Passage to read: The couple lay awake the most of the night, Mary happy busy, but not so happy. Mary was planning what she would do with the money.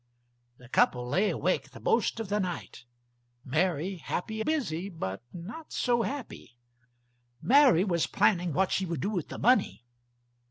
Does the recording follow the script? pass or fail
pass